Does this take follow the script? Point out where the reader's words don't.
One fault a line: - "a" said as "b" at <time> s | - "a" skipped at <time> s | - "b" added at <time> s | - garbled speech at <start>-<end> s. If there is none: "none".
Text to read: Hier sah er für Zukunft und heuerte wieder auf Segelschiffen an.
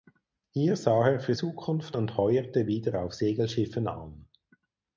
none